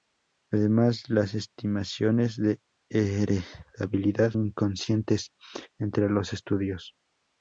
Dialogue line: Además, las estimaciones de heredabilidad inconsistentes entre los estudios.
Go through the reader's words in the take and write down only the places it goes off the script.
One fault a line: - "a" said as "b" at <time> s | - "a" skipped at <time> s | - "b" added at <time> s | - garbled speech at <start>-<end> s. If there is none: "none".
none